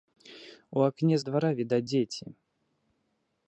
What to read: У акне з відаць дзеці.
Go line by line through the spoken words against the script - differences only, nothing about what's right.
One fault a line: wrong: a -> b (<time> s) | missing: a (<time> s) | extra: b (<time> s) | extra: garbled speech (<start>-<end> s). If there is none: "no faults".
extra: двара (1.3 s)